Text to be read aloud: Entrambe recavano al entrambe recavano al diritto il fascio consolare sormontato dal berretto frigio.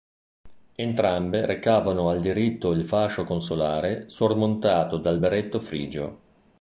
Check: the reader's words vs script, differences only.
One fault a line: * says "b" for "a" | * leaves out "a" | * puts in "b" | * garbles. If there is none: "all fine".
* leaves out "entrambe recavano al"